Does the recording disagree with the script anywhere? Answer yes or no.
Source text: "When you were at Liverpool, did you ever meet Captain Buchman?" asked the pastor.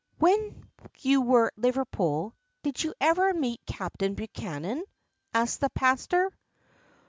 yes